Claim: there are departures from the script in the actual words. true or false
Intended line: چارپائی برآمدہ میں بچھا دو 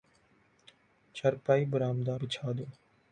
true